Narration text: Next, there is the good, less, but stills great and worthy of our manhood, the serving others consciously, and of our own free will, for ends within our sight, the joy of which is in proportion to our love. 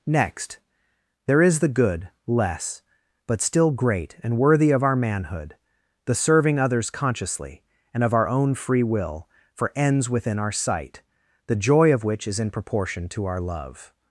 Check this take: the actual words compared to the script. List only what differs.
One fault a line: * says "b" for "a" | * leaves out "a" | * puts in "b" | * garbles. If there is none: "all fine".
* says "still" for "stills"